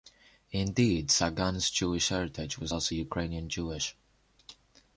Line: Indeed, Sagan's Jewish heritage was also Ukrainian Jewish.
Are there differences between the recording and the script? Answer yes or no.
no